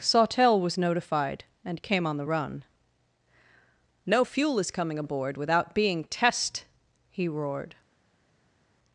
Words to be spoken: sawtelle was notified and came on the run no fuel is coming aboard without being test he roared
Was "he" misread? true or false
false